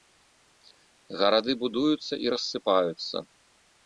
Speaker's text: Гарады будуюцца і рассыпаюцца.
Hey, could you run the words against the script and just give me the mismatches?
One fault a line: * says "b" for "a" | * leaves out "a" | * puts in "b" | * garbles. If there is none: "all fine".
all fine